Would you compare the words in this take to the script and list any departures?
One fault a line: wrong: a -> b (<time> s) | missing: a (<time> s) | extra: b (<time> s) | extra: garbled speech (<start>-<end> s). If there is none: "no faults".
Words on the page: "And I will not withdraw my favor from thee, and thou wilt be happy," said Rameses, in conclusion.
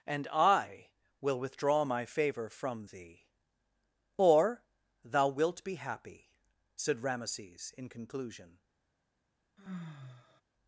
missing: not (1.4 s)
wrong: and -> or (4.2 s)